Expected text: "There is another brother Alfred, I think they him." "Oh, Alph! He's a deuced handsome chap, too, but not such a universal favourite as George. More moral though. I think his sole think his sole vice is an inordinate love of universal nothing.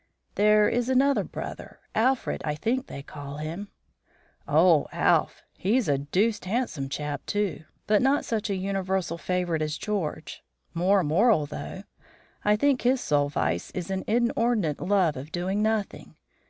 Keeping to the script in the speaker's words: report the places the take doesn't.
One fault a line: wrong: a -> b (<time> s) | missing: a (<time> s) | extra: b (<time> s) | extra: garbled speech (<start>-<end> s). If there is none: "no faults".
extra: call (3.0 s)
missing: think his sole (13.3 s)
wrong: universal -> doing (15.3 s)